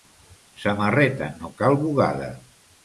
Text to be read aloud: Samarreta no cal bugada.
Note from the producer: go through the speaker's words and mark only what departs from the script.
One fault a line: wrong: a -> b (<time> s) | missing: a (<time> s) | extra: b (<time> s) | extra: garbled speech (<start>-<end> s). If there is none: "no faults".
no faults